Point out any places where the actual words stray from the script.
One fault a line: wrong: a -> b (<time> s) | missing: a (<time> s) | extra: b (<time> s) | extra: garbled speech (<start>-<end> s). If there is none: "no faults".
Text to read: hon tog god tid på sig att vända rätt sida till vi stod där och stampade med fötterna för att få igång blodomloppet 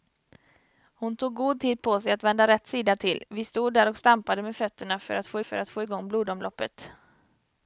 extra: för att få (5.4 s)